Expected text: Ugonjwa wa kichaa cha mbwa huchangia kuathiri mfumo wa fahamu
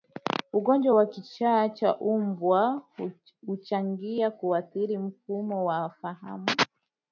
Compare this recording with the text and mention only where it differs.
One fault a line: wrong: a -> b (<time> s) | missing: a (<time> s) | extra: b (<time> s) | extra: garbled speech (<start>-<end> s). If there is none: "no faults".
no faults